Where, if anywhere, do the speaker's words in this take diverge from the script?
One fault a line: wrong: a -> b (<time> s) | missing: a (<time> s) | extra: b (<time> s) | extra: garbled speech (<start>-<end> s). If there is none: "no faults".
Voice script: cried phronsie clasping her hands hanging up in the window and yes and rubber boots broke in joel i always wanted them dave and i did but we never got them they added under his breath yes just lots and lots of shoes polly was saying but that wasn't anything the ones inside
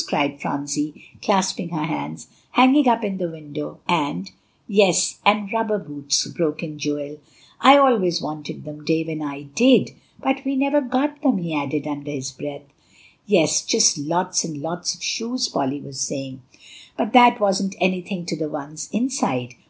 wrong: they -> he (11.4 s)
extra: to (18.3 s)